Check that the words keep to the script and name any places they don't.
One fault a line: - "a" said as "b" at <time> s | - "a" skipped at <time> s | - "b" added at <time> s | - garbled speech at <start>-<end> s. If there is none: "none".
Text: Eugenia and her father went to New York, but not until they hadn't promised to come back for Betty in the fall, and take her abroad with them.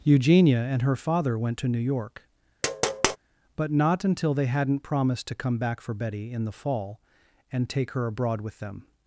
none